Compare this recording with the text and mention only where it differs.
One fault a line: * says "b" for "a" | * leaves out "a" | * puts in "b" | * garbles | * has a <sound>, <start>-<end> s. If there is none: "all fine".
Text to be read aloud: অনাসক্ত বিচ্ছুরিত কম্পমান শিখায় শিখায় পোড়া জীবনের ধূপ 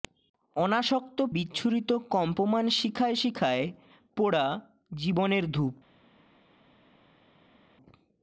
all fine